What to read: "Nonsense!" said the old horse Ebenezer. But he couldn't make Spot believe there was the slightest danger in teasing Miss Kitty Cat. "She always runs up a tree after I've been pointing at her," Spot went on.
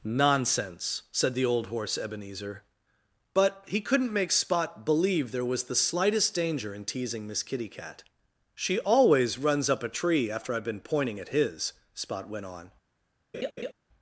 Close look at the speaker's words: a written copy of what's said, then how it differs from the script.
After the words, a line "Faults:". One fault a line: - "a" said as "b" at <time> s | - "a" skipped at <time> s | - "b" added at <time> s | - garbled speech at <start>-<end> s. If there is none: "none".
"Nonsense!" said the old horse Ebenezer. But he couldn't make Spot believe there was the slightest danger in teasing Miss Kitty Cat. "She always runs up a tree after I've been pointing at his," Spot went on.
Faults:
- "her" said as "his" at 11.3 s